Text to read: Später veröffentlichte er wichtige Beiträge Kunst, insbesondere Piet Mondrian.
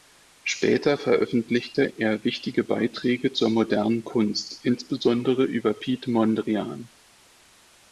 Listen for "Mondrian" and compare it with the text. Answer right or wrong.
right